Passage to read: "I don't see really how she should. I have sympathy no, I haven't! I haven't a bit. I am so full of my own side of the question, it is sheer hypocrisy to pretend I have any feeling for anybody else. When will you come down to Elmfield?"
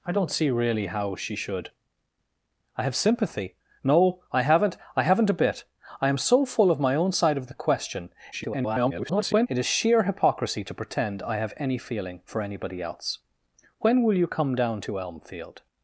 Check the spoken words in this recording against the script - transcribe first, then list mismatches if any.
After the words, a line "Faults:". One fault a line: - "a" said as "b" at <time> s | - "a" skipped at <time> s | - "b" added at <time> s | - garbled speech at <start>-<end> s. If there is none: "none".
"I don't see really how she should. I have sympathy no, I haven't! I haven't a bit. I am so full of my own side of the question, [garbled] it is sheer hypocrisy to pretend I have any feeling for anybody else. When will you come down to Elmfield?"
Faults:
- garbled speech at 8.3-9.5 s